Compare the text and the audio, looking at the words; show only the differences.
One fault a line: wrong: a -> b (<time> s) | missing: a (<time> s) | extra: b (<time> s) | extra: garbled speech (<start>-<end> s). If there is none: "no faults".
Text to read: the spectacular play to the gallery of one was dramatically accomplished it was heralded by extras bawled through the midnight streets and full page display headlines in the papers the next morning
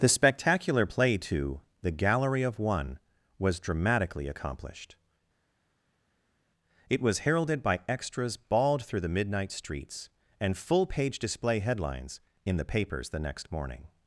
no faults